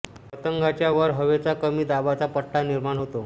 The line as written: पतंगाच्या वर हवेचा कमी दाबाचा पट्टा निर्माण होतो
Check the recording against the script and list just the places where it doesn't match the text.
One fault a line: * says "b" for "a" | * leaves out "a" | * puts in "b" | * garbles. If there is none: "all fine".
all fine